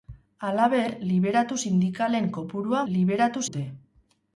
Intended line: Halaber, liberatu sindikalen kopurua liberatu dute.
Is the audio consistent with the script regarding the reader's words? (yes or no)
yes